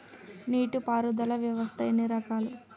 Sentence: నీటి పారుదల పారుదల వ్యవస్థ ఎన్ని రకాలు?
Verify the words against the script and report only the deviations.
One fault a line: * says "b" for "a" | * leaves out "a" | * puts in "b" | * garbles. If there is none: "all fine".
* leaves out "పారుదల"